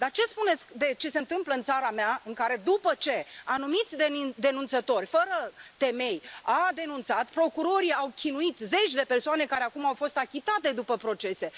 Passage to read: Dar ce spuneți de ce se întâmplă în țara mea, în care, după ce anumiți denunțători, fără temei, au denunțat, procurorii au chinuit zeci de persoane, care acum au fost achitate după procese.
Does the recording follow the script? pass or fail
pass